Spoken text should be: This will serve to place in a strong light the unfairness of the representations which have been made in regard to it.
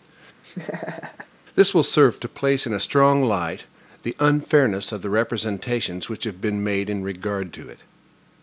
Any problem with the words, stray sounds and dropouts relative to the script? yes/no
yes